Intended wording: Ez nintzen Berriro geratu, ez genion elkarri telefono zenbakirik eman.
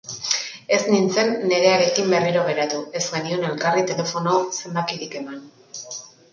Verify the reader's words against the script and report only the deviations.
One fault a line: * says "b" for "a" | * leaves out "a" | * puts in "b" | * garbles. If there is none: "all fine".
* puts in "Nerearekin"